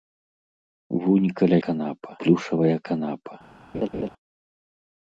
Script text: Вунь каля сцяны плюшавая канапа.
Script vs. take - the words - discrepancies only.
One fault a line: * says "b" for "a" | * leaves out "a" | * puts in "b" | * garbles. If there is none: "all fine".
* says "канапа" for "сцяны"